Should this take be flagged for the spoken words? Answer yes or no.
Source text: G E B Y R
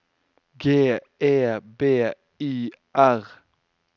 no